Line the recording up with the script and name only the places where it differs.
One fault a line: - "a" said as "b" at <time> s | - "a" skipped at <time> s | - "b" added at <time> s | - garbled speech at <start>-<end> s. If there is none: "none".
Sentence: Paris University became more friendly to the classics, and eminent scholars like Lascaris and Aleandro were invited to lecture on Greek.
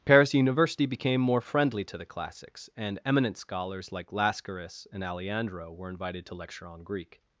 none